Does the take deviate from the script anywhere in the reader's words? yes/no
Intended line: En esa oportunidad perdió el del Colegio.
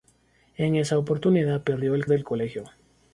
no